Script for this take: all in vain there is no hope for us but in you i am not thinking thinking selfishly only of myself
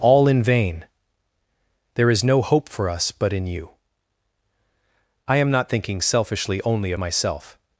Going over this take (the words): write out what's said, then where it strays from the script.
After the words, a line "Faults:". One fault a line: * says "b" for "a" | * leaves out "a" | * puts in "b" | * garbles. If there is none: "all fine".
all in vain there is no hope for us but in you i am not thinking selfishly only of myself
Faults:
* leaves out "thinking"